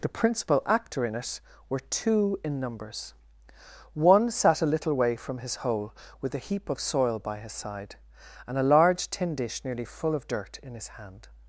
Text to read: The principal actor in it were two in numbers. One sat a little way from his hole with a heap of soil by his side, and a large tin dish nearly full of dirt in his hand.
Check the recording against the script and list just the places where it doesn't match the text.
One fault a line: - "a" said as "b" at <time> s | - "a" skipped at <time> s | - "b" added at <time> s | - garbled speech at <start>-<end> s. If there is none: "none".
none